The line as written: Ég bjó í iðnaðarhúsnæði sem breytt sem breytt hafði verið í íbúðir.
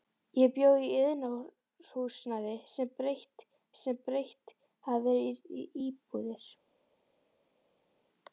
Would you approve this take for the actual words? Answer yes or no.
yes